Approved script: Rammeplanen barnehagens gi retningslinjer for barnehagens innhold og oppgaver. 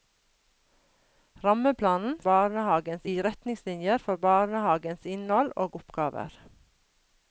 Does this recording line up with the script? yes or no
yes